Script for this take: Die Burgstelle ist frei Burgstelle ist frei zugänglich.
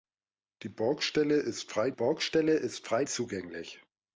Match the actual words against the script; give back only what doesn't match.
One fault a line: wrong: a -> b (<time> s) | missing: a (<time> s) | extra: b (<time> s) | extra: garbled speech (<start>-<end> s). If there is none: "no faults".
no faults